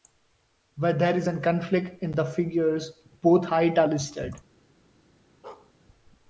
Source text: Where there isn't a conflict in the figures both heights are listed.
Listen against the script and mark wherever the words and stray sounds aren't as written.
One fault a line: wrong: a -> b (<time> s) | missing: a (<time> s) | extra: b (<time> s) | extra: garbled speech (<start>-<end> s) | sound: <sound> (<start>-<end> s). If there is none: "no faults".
wrong: isn't -> is (1.1 s)
sound: bark (5.4-5.7 s)